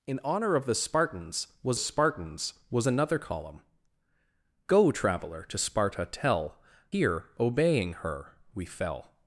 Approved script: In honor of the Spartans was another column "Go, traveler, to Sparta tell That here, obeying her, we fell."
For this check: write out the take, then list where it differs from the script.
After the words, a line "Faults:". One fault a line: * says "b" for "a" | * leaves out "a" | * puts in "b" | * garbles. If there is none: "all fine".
In honor of the Spartans was Spartans was another column "Go, traveler, to Sparta tell Here, obeying her, we fell."
Faults:
* puts in "Spartans was"
* leaves out "That"